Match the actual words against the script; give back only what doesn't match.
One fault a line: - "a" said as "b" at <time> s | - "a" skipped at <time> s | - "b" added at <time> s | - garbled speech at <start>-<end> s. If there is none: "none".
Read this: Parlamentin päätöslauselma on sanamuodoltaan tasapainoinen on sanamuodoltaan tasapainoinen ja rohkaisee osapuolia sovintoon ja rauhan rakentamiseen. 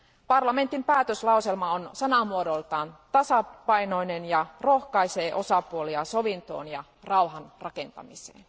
- "on sanamuodoltaan tasapainoinen" skipped at 4.2 s